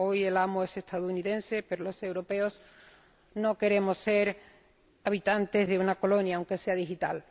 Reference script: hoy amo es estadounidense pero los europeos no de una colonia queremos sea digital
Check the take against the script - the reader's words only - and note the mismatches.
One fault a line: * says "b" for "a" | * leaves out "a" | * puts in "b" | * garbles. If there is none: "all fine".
* puts in "el"
* puts in "queremos ser habitantes"
* says "aunque" for "queremos"